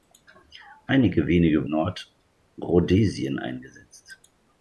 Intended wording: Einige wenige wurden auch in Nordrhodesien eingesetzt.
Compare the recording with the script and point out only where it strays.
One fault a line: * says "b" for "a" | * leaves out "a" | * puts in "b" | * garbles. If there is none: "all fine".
* leaves out "wurden auch in"